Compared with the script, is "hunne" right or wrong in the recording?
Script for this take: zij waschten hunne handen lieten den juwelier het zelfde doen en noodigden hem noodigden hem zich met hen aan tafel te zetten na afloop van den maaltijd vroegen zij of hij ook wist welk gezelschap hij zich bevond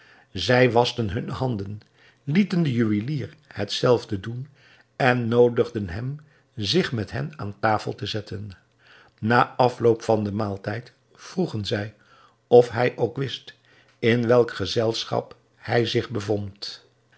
right